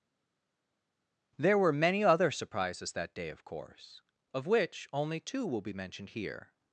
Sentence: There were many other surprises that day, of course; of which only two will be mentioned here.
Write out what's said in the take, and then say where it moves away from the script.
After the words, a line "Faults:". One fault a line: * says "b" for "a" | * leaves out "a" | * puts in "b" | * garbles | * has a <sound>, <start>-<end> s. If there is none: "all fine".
There were many other surprises that day, of course; of which only two will be mentioned here.
Faults:
all fine